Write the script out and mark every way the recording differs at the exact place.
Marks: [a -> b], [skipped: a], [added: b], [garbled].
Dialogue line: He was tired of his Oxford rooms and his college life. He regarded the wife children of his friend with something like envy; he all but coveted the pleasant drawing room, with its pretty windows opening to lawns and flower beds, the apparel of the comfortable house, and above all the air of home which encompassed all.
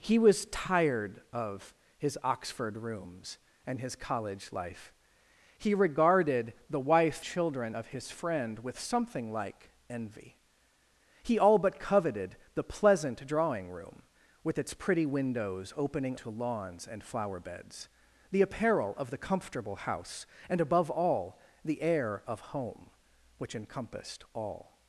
He was tired of his Oxford rooms and his college life. He regarded the wife children of his friend with something like envy; he all but coveted the pleasant drawing room, with its pretty windows opening to lawns and flower beds, the apparel of the comfortable house, and above all the air of home which encompassed all.